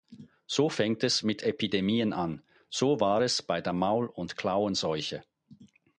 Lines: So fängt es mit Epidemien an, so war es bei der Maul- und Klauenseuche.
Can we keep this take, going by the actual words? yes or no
yes